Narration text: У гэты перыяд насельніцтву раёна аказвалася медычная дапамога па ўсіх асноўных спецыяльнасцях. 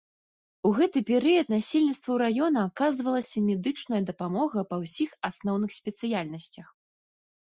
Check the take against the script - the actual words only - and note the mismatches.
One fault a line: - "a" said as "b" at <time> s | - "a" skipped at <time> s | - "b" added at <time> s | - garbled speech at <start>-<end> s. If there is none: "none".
none